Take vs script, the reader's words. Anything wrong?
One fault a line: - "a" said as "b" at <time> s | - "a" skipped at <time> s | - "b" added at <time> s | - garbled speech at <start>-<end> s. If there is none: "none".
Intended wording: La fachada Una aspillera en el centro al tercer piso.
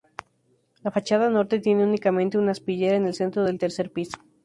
- "Norte tiene únicamente" added at 1.3 s
- "al" said as "del" at 3.4 s